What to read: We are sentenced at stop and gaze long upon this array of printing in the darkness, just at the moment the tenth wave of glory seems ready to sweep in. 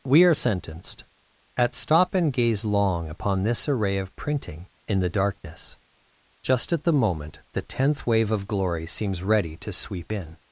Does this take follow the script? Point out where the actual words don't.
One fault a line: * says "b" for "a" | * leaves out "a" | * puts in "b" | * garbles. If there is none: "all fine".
all fine